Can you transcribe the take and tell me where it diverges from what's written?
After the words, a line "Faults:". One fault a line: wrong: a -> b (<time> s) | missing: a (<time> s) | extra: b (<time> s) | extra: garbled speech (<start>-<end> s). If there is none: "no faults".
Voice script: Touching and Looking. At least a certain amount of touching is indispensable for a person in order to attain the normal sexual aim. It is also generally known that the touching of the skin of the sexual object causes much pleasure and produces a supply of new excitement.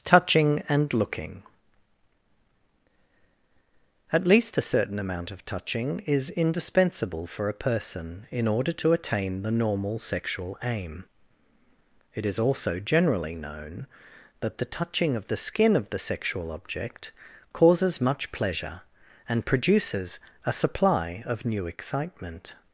Touching and Looking. At least a certain amount of touching is indispensable for a person in order to attain the normal sexual aim. It is also generally known that the touching of the skin of the sexual object causes much pleasure and produces a supply of new excitement.
Faults:
no faults